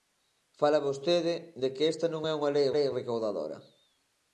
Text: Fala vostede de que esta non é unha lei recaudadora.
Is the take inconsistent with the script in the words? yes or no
yes